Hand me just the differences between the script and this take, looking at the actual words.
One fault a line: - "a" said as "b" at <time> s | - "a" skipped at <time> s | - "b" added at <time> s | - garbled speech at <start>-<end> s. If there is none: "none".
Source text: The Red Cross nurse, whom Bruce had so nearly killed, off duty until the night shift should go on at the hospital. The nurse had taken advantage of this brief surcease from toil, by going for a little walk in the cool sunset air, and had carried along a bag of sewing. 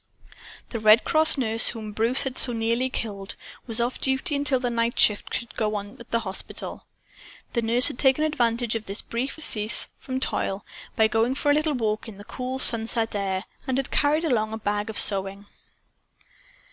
- "was" added at 3.7 s